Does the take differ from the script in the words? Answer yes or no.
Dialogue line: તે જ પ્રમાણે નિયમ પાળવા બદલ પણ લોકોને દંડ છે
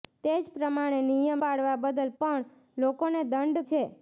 no